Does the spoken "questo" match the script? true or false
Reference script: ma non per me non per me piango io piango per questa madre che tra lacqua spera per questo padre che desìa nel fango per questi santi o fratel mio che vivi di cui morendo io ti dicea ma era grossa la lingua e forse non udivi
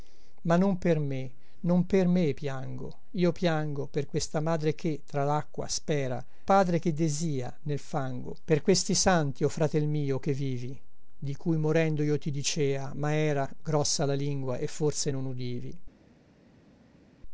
false